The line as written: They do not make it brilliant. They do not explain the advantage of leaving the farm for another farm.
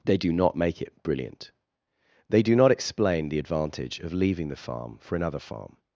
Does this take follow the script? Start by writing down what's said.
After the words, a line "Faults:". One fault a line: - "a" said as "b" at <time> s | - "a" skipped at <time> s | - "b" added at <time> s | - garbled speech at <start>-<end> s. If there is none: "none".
They do not make it brilliant. They do not explain the advantage of leaving the farm for another farm.
Faults:
none